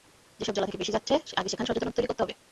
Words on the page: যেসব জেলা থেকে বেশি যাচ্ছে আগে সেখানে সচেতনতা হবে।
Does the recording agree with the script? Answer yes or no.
no